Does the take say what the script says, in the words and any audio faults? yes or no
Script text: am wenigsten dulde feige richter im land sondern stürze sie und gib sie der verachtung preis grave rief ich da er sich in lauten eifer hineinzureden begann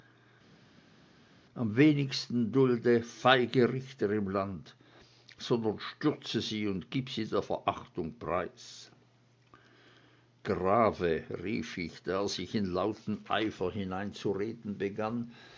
yes